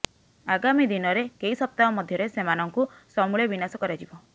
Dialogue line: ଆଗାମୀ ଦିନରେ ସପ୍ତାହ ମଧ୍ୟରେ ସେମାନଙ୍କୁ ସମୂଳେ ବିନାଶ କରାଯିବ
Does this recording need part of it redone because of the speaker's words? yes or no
yes